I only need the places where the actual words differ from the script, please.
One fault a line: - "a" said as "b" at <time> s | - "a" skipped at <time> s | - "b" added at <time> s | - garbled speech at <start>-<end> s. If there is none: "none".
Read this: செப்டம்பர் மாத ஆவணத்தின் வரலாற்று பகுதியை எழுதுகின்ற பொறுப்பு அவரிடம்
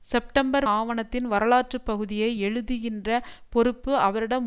- "மாத" skipped at 0.7 s